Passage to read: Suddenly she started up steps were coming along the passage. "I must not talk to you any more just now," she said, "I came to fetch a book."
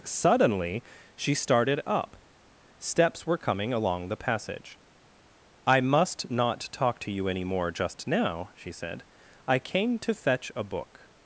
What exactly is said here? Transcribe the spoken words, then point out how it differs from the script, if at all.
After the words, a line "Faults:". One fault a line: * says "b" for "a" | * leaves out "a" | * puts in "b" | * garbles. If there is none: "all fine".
Suddenly she started up steps were coming along the passage. "I must not talk to you any more just now," she said, "I came to fetch a book."
Faults:
all fine